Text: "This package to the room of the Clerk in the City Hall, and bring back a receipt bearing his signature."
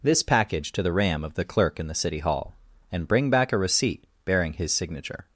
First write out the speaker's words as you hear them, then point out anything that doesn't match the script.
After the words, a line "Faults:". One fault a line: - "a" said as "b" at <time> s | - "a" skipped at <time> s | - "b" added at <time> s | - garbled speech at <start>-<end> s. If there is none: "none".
"This package to the ram of the Clerk in the City Hall, and bring back a receipt bearing his signature."
Faults:
- "room" said as "ram" at 0.9 s